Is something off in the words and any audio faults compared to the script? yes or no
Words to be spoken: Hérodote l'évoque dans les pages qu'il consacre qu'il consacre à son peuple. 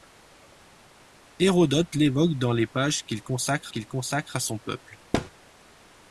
yes